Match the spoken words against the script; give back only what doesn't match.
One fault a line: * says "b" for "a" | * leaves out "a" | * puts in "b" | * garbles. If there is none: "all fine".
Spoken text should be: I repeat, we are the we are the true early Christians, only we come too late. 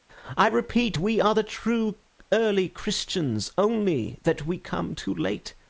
* leaves out "we are the"
* puts in "that"